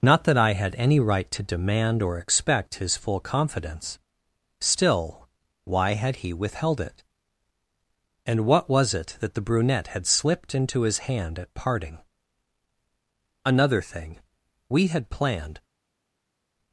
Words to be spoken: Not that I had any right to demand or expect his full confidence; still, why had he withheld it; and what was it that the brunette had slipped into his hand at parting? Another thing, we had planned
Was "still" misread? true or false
false